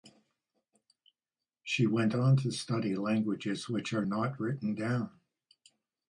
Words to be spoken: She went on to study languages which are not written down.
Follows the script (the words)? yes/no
yes